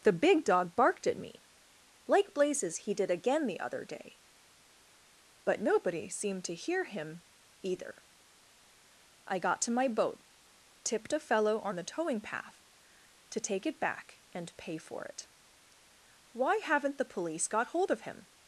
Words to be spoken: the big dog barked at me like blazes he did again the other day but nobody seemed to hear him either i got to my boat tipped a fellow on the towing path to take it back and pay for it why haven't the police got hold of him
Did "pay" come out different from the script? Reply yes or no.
no